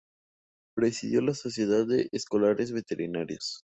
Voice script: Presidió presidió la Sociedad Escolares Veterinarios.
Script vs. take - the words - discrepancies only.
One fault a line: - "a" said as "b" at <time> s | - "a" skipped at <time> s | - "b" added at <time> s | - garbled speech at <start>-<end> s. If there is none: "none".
- "presidió" skipped at 1.2 s
- "de" added at 1.9 s